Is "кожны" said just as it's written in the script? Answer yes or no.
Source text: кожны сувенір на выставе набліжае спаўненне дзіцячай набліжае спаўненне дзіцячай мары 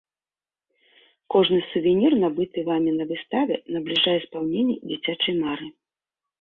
yes